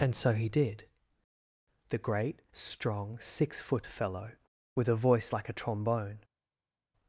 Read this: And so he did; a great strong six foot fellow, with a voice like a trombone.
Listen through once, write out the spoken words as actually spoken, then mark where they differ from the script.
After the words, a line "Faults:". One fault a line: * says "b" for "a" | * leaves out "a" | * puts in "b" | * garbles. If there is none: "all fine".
And so he did; the great strong six foot fellow, with a voice like a trombone.
Faults:
* says "the" for "a"